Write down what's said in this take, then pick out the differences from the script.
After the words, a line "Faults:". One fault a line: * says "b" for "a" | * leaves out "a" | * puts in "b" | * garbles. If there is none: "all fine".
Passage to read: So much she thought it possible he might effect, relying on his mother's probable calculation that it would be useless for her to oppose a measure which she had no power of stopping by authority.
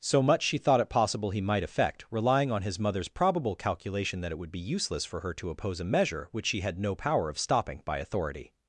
So much she thought it possible he might effect, relying on his mother's probable calculation that it would be useless for her to oppose a measure which she had no power of stopping by authority.
Faults:
all fine